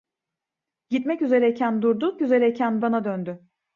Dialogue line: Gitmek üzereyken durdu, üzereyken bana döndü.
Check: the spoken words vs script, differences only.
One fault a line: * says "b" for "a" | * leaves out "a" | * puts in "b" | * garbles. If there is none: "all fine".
all fine